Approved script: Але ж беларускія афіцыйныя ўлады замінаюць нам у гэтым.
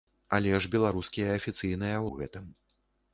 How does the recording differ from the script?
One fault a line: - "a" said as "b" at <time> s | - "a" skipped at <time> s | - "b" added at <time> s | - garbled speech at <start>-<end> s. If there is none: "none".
- "ўлады замінаюць нам" skipped at 2.0 s